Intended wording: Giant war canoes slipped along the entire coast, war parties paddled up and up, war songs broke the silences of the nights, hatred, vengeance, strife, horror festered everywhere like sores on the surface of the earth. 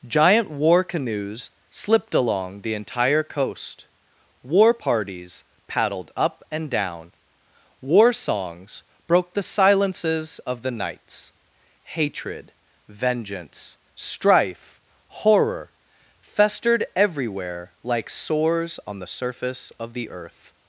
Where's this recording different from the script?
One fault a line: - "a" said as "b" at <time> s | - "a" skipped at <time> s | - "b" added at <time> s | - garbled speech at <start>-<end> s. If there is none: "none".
- "up" said as "down" at 6.7 s